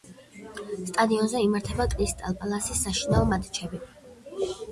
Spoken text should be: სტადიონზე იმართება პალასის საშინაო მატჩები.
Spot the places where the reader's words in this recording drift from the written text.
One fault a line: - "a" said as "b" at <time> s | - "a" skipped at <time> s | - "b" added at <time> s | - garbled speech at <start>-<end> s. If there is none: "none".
- "კრისტალ" added at 2.0 s